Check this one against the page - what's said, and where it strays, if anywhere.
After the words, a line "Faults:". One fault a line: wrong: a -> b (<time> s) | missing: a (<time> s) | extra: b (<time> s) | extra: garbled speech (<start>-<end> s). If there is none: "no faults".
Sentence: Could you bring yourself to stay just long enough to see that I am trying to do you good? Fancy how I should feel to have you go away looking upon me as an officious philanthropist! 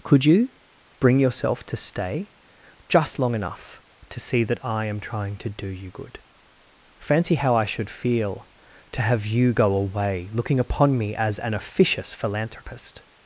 Could you bring yourself to stay just long enough to see that I am trying to do you good? Fancy how I should feel to have you go away looking upon me as an officious philanthropist!
Faults:
no faults